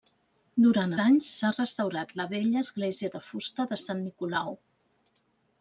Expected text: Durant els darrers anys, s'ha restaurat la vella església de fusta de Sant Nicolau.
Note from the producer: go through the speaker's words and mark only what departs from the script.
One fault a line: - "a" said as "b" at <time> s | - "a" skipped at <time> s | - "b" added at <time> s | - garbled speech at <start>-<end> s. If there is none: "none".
- "els darrers" skipped at 0.9 s